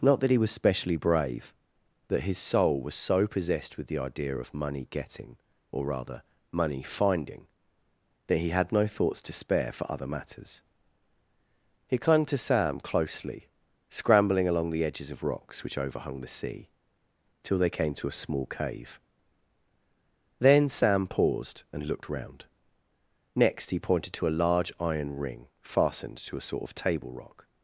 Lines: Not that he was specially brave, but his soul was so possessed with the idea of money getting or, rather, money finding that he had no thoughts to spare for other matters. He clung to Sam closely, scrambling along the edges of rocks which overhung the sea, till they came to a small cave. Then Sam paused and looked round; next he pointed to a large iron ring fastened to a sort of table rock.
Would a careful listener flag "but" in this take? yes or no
yes